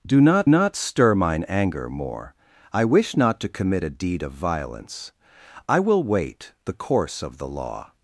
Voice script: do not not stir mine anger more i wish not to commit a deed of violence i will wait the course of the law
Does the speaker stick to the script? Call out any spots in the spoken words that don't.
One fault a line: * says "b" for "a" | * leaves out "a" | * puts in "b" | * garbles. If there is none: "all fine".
all fine